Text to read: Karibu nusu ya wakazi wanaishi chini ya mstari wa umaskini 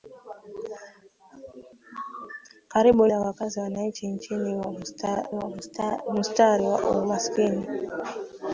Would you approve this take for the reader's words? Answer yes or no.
no